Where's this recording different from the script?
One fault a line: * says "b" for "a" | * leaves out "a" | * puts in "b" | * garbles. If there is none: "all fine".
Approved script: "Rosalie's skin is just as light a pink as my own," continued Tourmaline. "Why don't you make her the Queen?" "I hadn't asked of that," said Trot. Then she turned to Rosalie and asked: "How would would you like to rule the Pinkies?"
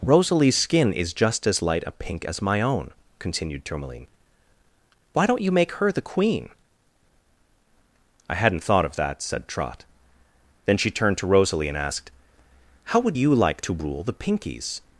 * says "thought" for "asked"
* leaves out "would"